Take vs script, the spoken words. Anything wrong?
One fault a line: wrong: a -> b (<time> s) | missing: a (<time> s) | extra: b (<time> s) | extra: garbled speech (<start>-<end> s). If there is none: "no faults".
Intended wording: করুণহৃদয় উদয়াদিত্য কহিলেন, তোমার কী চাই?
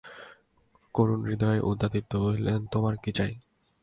no faults